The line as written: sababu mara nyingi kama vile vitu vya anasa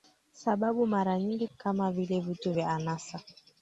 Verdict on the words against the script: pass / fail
pass